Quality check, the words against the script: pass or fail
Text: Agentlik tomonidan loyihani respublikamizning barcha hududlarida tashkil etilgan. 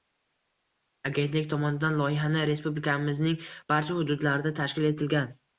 pass